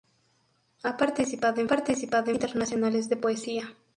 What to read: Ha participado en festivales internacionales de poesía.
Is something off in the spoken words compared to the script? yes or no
yes